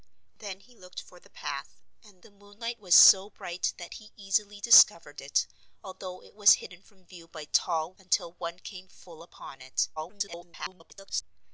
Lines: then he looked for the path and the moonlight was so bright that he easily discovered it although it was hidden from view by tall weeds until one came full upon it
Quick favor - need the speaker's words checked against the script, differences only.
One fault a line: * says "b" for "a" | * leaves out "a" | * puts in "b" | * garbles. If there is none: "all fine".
* leaves out "weeds"
* garbles